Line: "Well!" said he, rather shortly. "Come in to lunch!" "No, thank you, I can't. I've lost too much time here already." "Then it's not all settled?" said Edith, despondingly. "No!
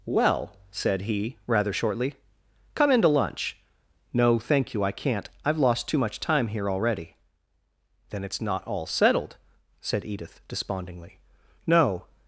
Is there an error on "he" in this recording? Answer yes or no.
no